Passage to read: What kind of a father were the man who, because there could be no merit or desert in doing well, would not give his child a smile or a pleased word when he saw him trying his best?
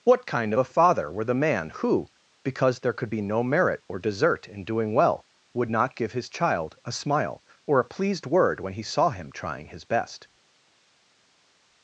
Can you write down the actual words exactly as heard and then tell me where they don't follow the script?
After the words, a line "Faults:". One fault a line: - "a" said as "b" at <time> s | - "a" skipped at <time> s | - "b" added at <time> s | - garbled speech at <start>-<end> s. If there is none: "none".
What kind of a father were the man who, because there could be no merit or desert in doing well, would not give his child a smile or a pleased word when he saw him trying his best?
Faults:
none